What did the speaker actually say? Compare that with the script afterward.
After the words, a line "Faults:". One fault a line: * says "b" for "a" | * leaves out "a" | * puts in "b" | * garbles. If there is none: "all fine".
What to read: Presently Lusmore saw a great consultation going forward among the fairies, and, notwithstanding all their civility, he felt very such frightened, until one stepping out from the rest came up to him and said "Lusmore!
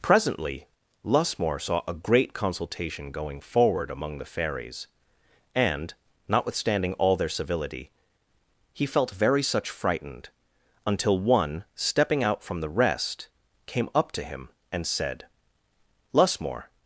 Presently Lusmore saw a great consultation going forward among the fairies, and, notwithstanding all their civility, he felt very such frightened, until one stepping out from the rest came up to him and said "Lusmore!
Faults:
all fine